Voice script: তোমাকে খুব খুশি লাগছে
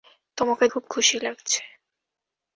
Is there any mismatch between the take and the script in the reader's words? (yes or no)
no